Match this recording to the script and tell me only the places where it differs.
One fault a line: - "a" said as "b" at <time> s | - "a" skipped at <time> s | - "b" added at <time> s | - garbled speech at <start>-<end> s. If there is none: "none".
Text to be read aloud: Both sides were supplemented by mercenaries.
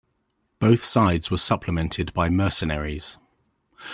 none